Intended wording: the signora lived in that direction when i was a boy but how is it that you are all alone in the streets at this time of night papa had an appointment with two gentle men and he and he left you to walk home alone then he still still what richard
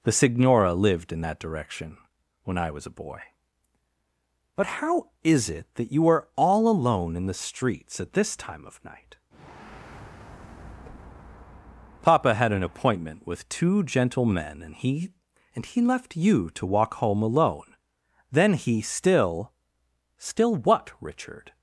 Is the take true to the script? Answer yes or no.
yes